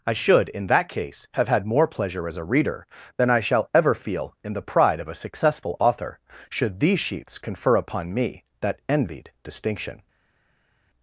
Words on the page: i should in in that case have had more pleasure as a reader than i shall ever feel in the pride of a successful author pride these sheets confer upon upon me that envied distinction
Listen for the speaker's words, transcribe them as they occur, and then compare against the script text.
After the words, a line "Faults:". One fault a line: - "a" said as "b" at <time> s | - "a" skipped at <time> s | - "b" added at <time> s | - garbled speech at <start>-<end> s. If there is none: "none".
i should in that case have had more pleasure as a reader than i shall ever feel in the pride of a successful author should these sheets confer upon me that envied distinction
Faults:
- "in" skipped at 0.7 s
- "pride" said as "should" at 6.5 s
- "upon" skipped at 8.1 s